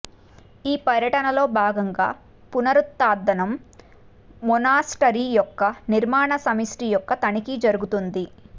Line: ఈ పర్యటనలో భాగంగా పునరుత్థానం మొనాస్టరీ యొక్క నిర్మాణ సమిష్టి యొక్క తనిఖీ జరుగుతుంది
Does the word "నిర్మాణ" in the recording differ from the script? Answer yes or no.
no